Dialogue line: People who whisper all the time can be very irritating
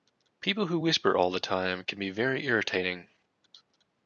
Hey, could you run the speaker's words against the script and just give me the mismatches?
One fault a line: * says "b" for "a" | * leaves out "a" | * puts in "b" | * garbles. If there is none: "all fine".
all fine